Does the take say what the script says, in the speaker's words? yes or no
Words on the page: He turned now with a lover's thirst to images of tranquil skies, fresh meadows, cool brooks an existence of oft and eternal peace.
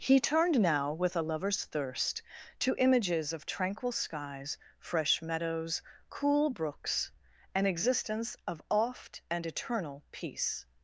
yes